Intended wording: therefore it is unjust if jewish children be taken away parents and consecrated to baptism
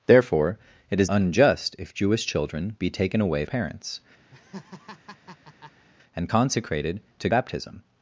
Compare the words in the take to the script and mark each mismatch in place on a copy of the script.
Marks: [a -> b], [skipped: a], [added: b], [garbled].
therefore it is unjust if jewish children be taken away parents and consecrated to baptism